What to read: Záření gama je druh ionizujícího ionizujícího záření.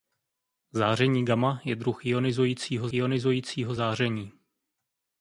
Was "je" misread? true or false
false